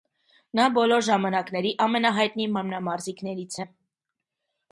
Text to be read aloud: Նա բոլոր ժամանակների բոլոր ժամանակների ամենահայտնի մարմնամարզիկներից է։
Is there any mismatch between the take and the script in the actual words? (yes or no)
yes